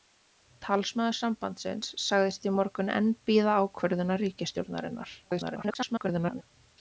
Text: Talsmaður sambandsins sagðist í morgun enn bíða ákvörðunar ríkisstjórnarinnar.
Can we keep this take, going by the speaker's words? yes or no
no